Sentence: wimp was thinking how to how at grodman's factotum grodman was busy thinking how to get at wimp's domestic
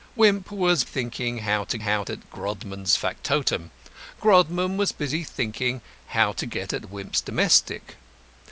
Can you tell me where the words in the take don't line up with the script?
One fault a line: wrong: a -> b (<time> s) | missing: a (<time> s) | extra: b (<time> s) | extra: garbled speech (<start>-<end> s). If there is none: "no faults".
no faults